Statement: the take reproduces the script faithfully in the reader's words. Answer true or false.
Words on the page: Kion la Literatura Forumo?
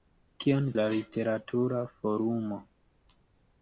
true